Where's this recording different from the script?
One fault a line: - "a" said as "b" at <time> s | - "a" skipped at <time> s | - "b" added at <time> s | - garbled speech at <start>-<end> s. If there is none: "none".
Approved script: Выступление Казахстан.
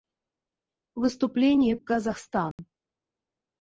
none